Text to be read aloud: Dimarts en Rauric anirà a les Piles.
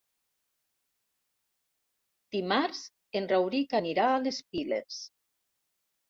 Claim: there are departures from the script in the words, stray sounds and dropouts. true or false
false